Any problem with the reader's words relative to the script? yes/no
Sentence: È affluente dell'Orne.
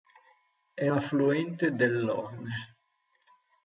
no